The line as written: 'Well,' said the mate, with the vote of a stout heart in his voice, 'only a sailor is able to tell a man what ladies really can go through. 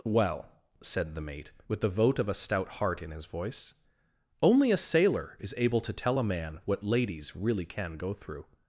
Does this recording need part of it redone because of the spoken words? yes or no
no